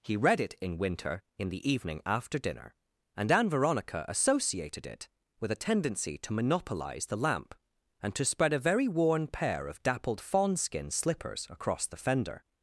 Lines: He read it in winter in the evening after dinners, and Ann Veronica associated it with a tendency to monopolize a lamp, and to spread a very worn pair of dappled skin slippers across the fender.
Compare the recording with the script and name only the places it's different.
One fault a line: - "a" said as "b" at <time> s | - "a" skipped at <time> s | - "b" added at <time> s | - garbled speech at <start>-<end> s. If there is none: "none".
- "dinners" said as "dinner" at 2.4 s
- "a" said as "the" at 7.0 s
- "fawn" added at 10.2 s